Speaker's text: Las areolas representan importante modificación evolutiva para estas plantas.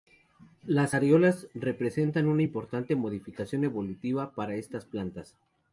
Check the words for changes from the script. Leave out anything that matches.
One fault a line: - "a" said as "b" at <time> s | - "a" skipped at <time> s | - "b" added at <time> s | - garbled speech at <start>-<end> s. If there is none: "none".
- "una" added at 2.3 s